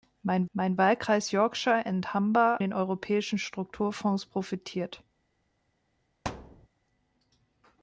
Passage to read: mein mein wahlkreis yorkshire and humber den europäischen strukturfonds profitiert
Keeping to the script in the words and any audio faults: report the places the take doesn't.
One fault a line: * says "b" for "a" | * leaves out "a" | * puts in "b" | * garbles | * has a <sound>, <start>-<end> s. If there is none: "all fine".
* has a thud, 6.2-6.7 s